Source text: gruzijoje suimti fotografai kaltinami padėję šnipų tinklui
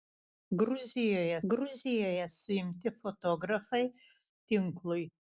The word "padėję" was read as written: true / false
false